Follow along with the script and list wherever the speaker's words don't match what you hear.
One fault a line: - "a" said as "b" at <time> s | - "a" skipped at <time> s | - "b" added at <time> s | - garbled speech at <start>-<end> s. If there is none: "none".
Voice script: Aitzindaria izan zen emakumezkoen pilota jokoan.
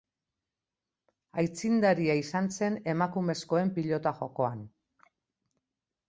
none